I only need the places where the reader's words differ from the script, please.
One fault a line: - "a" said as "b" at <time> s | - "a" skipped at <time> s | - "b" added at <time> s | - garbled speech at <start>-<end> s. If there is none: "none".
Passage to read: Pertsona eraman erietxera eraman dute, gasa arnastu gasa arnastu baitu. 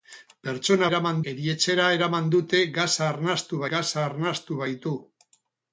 none